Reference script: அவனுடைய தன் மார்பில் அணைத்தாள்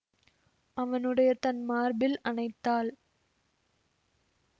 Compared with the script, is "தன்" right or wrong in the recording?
right